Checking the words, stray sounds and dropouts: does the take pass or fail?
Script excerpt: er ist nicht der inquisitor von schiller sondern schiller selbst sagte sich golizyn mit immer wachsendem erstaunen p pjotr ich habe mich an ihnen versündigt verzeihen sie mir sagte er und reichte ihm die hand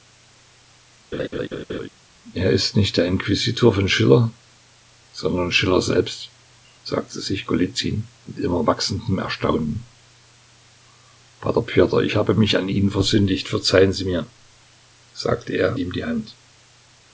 fail